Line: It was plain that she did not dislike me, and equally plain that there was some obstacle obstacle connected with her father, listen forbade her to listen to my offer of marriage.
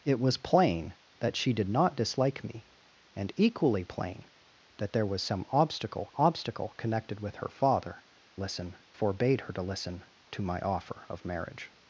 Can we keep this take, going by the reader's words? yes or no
yes